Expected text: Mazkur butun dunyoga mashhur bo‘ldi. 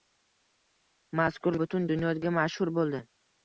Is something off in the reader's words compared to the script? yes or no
no